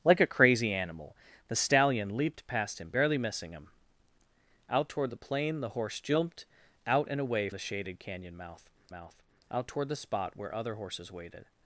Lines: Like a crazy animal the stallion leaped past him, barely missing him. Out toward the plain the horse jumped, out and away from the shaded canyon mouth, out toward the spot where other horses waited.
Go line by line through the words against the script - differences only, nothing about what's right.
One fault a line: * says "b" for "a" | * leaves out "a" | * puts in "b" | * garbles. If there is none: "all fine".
* leaves out "from"
* puts in "mouth"